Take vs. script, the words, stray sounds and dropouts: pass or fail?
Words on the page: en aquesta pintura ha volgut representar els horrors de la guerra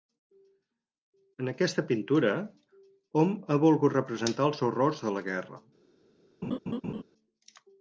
fail